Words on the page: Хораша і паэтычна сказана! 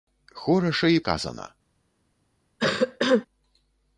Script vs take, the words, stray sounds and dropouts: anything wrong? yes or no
yes